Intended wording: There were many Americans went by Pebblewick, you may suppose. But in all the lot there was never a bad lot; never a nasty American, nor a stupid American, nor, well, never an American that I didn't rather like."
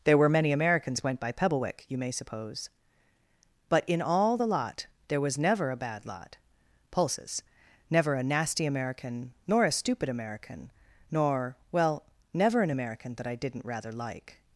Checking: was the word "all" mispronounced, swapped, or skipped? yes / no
no